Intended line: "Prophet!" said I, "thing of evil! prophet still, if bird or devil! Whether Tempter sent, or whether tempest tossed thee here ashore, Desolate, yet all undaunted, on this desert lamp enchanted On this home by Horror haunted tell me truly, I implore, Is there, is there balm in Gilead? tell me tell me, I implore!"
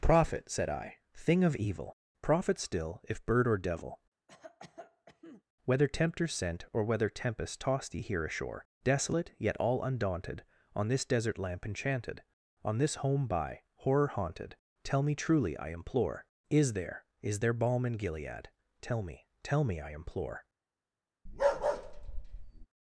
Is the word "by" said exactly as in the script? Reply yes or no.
yes